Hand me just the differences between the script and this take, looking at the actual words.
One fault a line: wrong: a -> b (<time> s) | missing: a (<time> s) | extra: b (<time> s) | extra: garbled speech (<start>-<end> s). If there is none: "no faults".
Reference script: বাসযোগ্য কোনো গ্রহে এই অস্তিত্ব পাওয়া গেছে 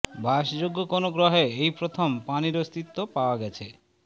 extra: প্রথম পানির (1.8 s)